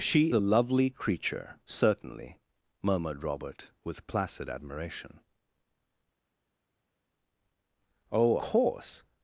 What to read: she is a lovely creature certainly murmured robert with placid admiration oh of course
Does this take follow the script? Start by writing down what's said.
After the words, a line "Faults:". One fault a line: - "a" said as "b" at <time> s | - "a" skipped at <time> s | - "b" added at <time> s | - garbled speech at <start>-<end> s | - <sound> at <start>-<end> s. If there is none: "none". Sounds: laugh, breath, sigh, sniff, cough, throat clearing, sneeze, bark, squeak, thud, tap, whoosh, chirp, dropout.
she a lovely creature certainly murmured robert with placid admiration oh course
Faults:
- "is" skipped at 0.3 s
- "of" skipped at 8.4 s